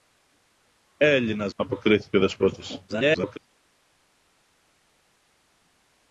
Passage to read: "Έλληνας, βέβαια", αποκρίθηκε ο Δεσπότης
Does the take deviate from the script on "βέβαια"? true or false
true